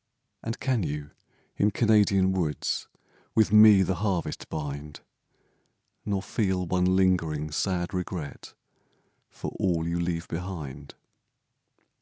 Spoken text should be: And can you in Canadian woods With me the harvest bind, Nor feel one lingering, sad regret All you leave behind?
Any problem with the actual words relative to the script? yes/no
yes